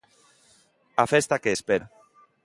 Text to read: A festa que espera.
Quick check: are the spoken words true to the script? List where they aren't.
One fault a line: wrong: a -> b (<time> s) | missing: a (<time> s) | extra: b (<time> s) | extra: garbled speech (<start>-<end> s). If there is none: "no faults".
no faults